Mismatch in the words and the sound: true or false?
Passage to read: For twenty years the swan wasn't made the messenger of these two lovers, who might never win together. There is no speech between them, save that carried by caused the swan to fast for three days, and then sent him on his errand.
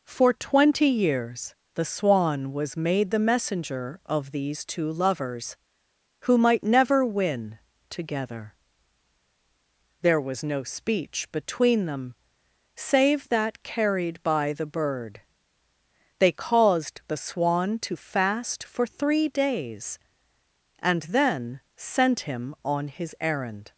true